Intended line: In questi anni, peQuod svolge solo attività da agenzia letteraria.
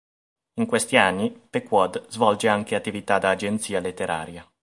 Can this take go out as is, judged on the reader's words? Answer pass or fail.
fail